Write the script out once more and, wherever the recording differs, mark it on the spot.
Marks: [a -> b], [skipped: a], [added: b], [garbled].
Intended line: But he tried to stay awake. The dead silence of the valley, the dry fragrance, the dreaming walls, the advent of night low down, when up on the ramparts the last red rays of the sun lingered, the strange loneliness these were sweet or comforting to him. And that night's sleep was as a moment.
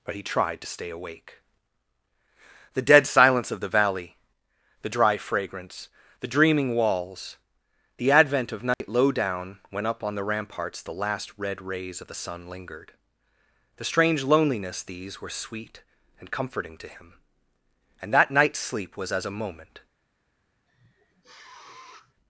But he tried to stay awake. The dead silence of the valley, the dry fragrance, the dreaming walls, the advent of night low down, when up on the ramparts the last red rays of the sun lingered, the strange loneliness these were sweet [or -> and] comforting to him. And that night's sleep was as a moment.